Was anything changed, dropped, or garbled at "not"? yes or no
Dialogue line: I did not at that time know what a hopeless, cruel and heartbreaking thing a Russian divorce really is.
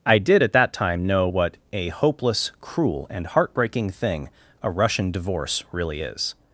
yes